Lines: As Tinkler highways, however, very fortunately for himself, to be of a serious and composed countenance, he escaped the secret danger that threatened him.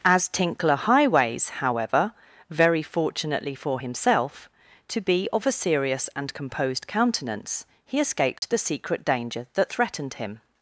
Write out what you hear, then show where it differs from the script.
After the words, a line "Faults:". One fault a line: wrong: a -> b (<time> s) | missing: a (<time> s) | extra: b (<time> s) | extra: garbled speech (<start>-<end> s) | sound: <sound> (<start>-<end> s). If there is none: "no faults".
As Tinkler highways, however, very fortunately for himself, to be of a serious and composed countenance, he escaped the secret danger that threatened him.
Faults:
sound: dropout (8.4-8.4 s)